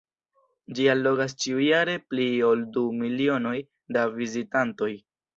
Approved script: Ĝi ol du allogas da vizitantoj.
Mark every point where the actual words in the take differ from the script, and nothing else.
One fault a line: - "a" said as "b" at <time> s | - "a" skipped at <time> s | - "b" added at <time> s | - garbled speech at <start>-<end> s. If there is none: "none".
- "allogas ĉiujare pli" added at 0.9 s
- "allogas" said as "milionoj" at 3.0 s